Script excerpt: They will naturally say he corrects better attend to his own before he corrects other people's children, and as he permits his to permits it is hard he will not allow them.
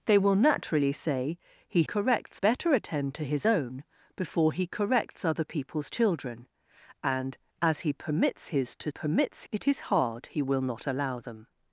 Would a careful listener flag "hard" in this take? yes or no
no